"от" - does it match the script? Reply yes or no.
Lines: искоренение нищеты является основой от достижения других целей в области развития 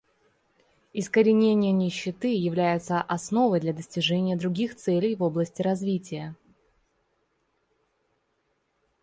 no